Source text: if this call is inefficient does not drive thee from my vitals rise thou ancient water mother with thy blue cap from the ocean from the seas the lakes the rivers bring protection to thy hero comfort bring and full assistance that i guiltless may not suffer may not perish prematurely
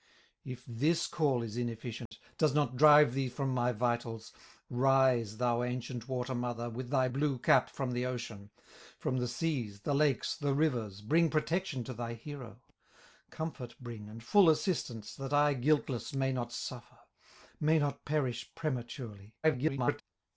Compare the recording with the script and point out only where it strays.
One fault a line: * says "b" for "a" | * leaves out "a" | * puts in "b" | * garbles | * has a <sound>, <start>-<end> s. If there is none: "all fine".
* has a dropout, 2.1-2.1 s
* garbles